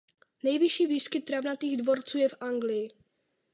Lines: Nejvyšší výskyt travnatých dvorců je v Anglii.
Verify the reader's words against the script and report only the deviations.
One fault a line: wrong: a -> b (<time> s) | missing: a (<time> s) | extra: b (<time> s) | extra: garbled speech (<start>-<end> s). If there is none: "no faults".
no faults